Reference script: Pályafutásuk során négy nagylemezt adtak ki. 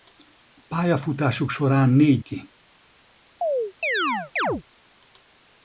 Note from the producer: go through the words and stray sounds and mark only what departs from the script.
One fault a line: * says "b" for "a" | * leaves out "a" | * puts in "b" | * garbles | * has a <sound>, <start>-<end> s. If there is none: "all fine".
* leaves out "nagylemezt adtak"
* has a chirp, 3.4-4.6 s